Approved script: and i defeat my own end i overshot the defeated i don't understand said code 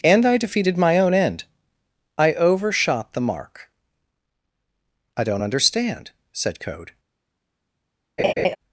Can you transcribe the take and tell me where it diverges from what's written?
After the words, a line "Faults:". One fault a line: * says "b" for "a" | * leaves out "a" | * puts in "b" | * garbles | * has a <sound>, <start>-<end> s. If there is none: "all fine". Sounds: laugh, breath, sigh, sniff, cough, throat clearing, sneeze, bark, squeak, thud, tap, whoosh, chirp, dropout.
and i defeated my own end i overshot the mark i don't understand said code
Faults:
* says "defeated" for "defeat"
* says "mark" for "defeated"
* has a laugh, 8.2-8.6 s